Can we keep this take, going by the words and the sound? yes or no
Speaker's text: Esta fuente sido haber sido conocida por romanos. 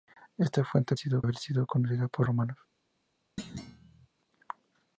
no